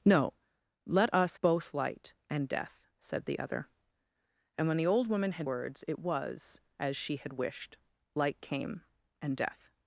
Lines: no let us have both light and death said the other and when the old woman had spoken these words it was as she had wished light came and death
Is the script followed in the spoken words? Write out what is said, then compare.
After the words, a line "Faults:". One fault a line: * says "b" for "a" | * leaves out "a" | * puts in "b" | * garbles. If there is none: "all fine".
no let us both light and death said the other and when the old woman had words it was as she had wished light came and death
Faults:
* leaves out "have"
* leaves out "spoken these"